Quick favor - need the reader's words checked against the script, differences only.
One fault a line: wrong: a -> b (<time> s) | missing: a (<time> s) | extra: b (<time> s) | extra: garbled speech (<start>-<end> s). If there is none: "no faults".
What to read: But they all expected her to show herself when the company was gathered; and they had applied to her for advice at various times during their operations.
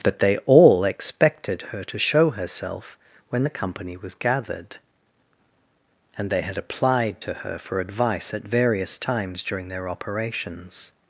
no faults